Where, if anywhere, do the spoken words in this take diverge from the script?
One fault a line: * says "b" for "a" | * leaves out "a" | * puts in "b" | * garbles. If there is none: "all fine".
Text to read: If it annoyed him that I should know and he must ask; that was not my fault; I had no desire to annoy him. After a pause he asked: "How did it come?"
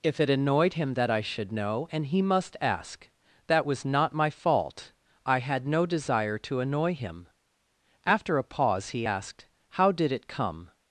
all fine